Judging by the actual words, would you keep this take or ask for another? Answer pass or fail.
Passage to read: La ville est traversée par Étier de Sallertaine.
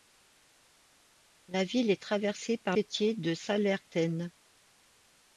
pass